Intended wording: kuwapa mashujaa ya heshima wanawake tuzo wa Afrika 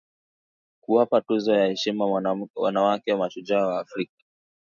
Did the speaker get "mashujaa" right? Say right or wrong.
wrong